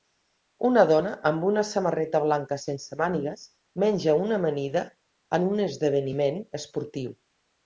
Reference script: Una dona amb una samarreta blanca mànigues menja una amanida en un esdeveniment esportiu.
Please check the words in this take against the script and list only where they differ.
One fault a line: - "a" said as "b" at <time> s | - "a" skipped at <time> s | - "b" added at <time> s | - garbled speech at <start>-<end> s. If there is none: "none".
- "sense" added at 2.6 s